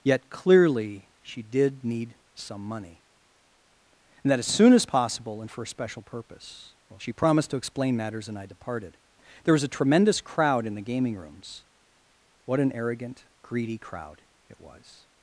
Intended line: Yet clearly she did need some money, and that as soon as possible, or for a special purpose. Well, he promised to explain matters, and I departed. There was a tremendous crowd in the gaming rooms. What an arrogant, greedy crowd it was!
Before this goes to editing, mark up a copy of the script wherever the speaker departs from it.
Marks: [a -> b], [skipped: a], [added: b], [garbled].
Yet clearly she did need some money, and that as soon as possible, [or -> and] for a special purpose. Well, [he -> she] promised to explain matters, and I departed. There was a tremendous crowd in the gaming rooms. What an arrogant, greedy crowd it was!